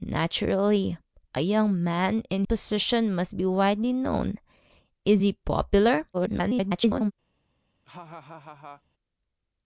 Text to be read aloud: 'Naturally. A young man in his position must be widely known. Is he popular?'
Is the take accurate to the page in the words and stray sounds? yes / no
no